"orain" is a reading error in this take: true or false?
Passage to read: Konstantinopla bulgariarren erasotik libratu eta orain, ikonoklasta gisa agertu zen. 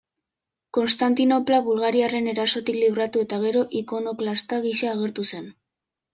true